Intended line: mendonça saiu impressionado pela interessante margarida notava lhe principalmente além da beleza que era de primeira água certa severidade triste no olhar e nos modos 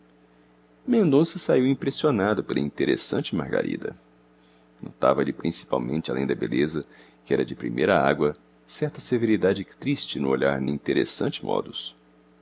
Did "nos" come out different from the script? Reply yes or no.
yes